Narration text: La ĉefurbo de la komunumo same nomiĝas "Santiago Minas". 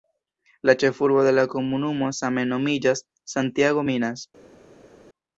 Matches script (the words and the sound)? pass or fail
pass